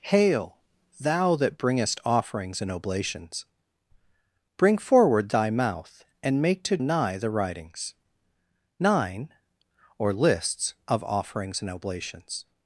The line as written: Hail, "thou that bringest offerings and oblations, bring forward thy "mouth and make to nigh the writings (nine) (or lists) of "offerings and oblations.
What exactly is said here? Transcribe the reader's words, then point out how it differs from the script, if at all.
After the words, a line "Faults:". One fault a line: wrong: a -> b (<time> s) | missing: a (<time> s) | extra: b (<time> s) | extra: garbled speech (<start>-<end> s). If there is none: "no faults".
Hail, "thou that bringest offerings and oblations, bring forward thy "mouth and make to nigh the writings (nine) (or lists) of "offerings and oblations.
Faults:
no faults